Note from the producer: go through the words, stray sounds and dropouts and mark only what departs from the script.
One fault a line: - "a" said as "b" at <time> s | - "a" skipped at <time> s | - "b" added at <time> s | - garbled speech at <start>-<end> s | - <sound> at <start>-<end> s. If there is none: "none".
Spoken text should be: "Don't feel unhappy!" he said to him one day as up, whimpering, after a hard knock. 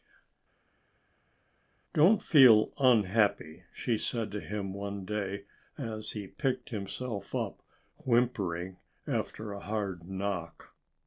- "he" said as "she" at 3.7 s
- "he picked himself" added at 6.1 s